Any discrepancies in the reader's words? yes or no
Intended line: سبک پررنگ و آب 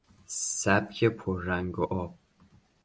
no